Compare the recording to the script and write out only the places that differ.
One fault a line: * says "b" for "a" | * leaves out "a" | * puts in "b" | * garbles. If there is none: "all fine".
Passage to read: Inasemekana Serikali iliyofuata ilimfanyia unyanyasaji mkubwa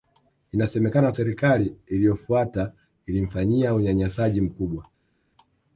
all fine